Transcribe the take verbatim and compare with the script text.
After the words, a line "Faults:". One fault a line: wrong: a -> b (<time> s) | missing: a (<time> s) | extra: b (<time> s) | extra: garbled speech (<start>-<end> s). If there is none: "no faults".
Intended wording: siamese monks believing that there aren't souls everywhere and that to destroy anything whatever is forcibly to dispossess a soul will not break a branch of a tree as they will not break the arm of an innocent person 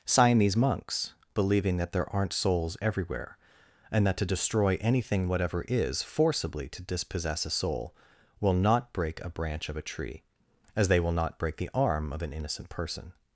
siamese monks believing that there aren't souls everywhere and that to destroy anything whatever is forcibly to dispossess a soul will not break a branch of a tree as they will not break the arm of an innocent person
Faults:
no faults